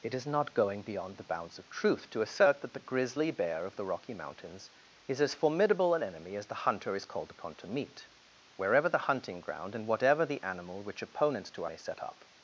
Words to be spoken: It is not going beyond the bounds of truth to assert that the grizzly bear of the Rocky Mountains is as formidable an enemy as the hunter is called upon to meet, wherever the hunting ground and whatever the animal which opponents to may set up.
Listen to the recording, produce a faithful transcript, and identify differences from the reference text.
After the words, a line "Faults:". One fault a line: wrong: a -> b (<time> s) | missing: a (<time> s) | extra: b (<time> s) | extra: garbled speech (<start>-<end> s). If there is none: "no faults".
It is not going beyond the bounds of truth to assert that the grizzly bear of the Rocky Mountains is as formidable an enemy as the hunter is called upon to meet, wherever the hunting ground and whatever the animal which opponents to may set up.
Faults:
no faults